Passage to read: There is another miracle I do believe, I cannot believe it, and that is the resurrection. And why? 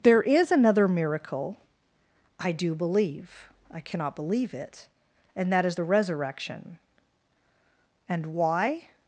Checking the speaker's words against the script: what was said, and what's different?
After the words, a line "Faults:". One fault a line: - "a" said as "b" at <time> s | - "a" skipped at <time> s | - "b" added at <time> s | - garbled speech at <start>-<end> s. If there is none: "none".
There is another miracle I do believe, I cannot believe it, and that is the resurrection. And why?
Faults:
none